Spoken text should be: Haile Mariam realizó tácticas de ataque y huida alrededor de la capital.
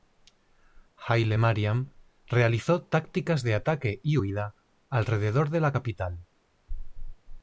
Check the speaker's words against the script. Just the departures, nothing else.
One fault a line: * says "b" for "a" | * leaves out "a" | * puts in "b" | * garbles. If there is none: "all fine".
all fine